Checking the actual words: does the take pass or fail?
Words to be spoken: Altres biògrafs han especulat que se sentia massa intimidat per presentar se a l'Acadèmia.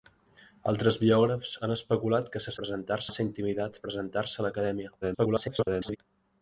fail